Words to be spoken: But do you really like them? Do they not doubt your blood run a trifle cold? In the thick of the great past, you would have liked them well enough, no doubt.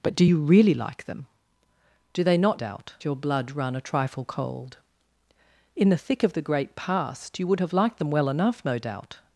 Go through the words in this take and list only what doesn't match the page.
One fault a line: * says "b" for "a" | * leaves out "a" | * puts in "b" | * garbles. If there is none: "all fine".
all fine